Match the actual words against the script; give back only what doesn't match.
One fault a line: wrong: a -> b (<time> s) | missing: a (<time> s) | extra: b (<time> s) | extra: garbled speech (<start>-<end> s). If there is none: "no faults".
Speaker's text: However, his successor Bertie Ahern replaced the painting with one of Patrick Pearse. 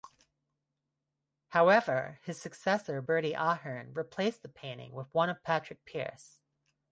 no faults